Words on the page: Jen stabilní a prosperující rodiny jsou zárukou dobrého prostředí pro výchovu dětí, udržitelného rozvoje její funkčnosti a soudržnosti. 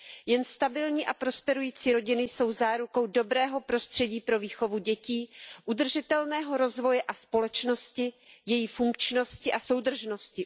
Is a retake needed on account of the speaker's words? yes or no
yes